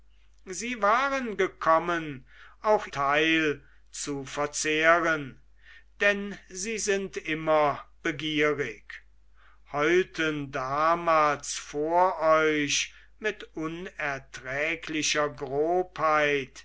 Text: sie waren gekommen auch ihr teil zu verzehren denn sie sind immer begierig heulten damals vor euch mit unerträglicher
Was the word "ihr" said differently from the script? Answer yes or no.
yes